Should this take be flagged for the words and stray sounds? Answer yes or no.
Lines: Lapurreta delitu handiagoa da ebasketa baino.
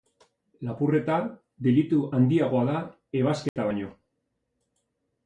yes